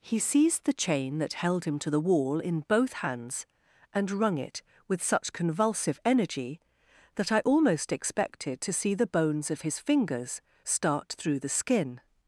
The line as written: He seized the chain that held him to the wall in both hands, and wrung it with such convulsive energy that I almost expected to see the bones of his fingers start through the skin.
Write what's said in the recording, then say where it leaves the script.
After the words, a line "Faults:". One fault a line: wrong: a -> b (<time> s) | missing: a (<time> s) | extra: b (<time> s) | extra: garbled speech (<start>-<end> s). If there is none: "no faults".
He seized the chain that held him to the wall in both hands, and wrung it with such convulsive energy that I almost expected to see the bones of his fingers start through the skin.
Faults:
no faults